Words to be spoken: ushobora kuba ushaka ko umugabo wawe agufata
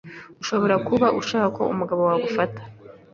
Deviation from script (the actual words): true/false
false